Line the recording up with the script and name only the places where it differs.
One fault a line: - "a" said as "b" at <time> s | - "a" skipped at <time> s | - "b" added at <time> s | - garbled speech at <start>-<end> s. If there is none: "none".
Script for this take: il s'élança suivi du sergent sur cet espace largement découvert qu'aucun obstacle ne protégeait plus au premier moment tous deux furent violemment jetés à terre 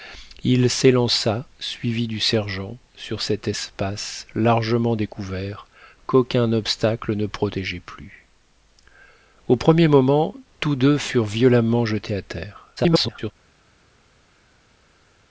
- garbled speech at 12.8-13.3 s